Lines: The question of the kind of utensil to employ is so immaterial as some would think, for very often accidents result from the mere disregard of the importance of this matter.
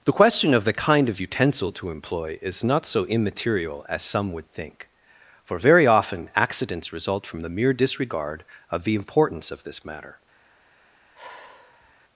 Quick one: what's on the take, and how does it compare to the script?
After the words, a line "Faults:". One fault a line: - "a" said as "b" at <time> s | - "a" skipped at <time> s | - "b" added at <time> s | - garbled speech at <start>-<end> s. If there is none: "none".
The question of the kind of utensil to employ is not so immaterial as some would think, for very often accidents result from the mere disregard of the importance of this matter.
Faults:
- "not" added at 2.6 s